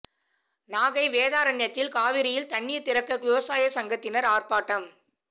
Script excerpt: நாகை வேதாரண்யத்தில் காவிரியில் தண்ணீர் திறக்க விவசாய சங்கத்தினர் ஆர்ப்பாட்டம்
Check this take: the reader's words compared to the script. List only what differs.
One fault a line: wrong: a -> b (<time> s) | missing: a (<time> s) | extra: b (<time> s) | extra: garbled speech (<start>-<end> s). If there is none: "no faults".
no faults